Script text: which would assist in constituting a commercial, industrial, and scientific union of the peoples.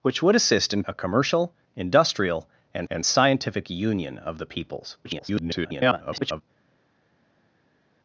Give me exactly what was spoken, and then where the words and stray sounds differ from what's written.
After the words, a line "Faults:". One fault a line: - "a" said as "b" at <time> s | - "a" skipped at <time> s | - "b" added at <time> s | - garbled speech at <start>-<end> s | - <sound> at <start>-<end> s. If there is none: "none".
which would assist in a commercial, industrial, and and scientific union of the peoples. [garbled]
Faults:
- "constituting" skipped at 0.8 s
- "and" added at 2.9 s
- garbled speech at 5.0-6.4 s